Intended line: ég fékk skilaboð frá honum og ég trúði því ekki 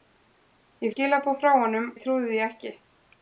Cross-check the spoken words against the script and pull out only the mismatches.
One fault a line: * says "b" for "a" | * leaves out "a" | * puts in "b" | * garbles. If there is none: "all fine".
* leaves out "fékk"
* leaves out "og"